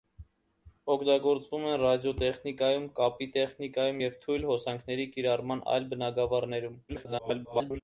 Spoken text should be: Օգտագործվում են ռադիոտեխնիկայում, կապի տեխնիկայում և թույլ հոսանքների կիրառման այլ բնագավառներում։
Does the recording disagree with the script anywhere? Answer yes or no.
yes